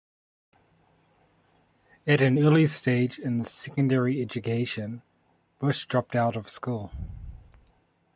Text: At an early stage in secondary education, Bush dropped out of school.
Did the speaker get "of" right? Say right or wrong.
right